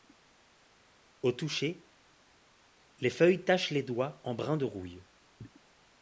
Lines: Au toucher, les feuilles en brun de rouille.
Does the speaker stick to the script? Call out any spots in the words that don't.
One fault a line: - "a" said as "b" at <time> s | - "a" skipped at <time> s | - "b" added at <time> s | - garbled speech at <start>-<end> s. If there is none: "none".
- "tachent les doigts" added at 3.4 s